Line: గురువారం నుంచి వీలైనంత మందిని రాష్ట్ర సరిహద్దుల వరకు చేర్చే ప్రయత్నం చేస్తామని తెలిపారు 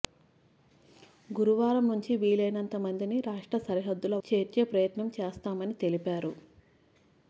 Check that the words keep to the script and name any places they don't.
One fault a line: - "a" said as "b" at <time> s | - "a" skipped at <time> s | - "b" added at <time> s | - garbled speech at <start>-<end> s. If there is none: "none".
- "వరకు" skipped at 4.2 s